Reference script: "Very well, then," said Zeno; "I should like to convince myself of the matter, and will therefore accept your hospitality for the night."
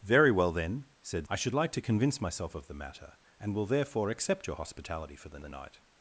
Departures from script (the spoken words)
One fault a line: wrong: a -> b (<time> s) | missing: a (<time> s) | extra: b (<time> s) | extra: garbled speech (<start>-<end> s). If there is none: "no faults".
missing: Zeno (1.3 s)
extra: the (5.4 s)